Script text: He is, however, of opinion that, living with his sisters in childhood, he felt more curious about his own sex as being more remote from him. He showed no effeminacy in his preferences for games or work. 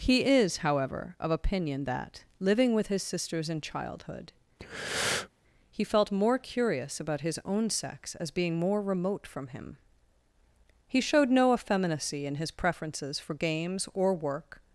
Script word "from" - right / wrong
right